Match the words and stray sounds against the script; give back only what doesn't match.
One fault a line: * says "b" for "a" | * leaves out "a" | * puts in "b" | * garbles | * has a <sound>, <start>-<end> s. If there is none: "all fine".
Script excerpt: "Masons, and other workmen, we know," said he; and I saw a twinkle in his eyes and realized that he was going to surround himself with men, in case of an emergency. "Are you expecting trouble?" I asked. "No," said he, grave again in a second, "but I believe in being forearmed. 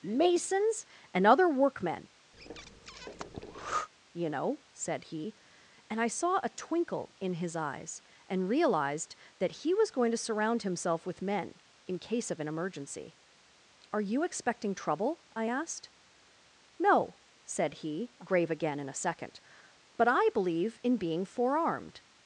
* has a breath, 2.3-3.9 s
* says "you" for "we"